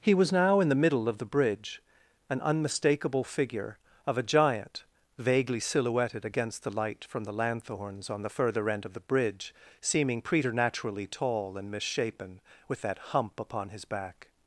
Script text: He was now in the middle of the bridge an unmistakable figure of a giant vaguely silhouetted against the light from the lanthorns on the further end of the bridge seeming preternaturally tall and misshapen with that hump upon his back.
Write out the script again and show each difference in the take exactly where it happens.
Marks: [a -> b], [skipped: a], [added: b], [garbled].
He was now in the middle of the bridge an unmistakable figure of a giant vaguely silhouetted against the light from the lanthorns on the further end of the bridge seeming preternaturally tall and misshapen with that hump upon his back.